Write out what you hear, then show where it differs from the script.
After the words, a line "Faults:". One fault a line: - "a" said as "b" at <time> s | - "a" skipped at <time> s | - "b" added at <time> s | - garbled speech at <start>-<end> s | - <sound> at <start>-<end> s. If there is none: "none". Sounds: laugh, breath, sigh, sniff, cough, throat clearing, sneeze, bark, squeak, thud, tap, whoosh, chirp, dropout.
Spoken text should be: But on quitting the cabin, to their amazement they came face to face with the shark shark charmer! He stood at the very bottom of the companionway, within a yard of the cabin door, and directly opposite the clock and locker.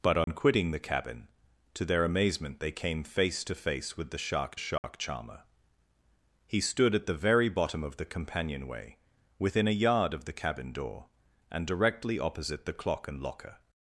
But on quitting the cabin, to their amazement they came face to face with the shark shark charmer! He stood at the very bottom of the companionway, within a yard of the cabin door, and directly opposite the clock and locker.
Faults:
- dropout at 0.2-0.3 s
- dropout at 4.8-4.8 s